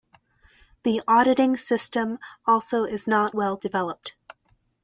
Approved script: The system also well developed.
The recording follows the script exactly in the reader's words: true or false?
false